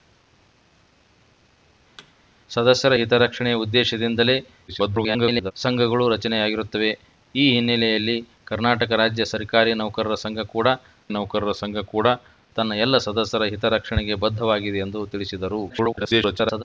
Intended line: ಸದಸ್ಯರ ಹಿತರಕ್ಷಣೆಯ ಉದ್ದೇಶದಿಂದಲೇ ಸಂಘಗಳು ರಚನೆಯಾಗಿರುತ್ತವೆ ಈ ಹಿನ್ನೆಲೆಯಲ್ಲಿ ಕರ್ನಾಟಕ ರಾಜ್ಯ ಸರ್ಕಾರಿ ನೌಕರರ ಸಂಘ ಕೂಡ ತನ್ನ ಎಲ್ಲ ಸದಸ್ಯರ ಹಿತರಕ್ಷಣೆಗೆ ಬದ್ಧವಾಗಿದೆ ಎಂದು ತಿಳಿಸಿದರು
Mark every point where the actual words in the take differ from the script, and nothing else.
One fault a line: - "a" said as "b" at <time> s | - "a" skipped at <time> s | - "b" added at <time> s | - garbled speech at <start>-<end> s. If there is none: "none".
- garbled speech at 4.7-5.5 s
- "ನೌಕರರ ಸಂಘ ಕೂಡ" added at 11.1 s
- garbled speech at 15.7-16.6 s